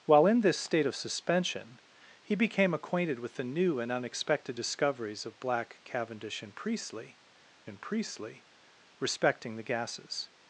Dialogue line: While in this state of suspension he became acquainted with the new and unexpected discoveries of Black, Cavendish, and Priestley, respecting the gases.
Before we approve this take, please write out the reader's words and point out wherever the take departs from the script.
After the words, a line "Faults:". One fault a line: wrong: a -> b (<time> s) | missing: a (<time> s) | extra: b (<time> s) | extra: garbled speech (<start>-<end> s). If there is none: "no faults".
While in this state of suspension he became acquainted with the new and unexpected discoveries of Black, Cavendish, and Priestley and Priestley, respecting the gases.
Faults:
extra: and Priestley (7.7 s)